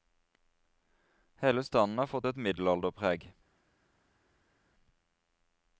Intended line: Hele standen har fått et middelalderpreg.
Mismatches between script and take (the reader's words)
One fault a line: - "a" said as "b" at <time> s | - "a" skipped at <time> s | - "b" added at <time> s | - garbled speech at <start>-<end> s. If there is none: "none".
none